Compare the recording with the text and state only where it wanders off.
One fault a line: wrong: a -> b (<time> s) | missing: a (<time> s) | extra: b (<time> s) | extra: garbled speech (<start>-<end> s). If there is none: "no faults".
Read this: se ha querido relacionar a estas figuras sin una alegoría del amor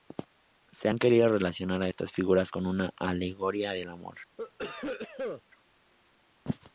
wrong: sin -> con (2.5 s)